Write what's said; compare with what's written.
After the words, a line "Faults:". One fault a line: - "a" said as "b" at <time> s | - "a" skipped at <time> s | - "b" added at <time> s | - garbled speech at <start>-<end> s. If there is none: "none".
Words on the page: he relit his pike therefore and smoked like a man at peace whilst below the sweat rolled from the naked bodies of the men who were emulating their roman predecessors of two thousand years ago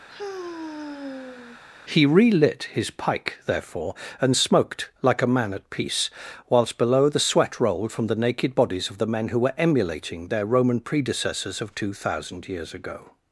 he relit his pike therefore and smoked like a man at peace whilst below the sweat rolled from the naked bodies of the men who were emulating their roman predecessors of two thousand years ago
Faults:
none